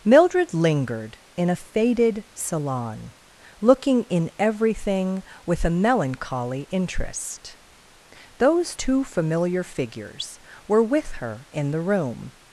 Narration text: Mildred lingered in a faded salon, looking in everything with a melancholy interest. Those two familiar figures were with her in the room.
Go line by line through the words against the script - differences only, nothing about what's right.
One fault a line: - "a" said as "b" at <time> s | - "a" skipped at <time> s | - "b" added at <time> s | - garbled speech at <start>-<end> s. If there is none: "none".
none